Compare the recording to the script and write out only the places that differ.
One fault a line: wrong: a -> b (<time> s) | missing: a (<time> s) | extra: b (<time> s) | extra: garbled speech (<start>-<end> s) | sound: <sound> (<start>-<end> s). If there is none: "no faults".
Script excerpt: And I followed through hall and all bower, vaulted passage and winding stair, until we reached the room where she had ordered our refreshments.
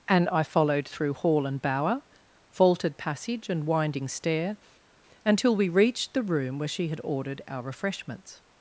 missing: all (1.6 s)